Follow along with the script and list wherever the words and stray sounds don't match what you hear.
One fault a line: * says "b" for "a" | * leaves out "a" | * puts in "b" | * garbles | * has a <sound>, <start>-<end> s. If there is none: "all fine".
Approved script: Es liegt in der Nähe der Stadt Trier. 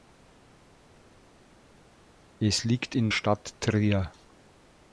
* leaves out "der Nähe der"